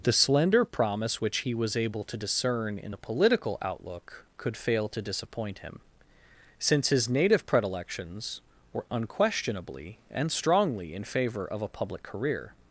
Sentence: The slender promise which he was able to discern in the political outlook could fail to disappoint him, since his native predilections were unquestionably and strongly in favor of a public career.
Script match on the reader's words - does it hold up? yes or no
yes